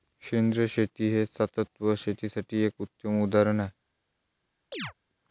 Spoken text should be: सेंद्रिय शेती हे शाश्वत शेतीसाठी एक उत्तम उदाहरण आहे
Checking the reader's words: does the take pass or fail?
pass